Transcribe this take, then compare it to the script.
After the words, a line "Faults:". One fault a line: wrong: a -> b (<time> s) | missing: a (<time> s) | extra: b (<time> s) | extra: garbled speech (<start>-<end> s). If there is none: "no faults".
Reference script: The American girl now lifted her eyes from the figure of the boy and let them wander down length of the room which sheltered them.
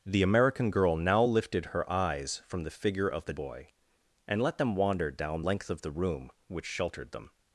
The American girl now lifted her eyes from the figure of the boy and let them wander down length of the room which sheltered them.
Faults:
no faults